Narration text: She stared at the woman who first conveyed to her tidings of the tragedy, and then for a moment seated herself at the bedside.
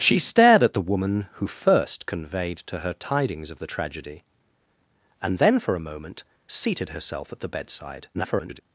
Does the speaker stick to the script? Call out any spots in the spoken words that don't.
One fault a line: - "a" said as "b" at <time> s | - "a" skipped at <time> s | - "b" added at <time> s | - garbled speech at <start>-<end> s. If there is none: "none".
- garbled speech at 8.1-8.6 s